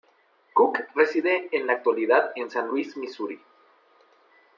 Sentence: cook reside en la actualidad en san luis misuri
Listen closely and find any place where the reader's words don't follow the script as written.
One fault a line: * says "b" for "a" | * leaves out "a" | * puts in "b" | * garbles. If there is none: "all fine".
all fine